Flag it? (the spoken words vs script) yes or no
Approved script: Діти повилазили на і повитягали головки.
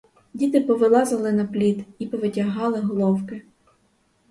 yes